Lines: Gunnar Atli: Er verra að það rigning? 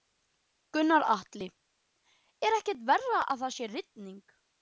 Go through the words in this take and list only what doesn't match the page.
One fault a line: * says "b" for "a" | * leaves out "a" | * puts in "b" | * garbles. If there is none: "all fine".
* puts in "ekkert"
* puts in "sé"